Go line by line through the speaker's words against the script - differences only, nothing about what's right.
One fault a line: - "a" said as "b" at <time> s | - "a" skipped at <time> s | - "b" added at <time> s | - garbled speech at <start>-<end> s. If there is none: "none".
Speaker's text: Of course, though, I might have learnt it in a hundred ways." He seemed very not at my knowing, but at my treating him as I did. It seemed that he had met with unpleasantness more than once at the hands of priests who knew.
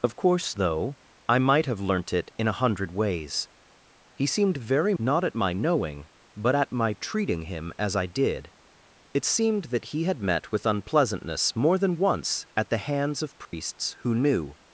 none